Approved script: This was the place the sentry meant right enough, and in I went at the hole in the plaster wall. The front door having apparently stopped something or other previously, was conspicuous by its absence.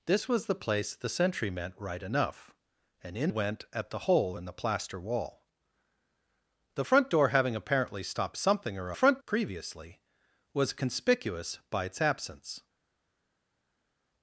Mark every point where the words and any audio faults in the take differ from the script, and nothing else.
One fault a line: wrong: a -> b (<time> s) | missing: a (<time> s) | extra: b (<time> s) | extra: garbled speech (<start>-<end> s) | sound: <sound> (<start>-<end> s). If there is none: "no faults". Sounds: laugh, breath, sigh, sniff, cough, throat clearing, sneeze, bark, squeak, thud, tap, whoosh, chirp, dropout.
missing: I (3.3 s)
wrong: other -> front (8.9 s)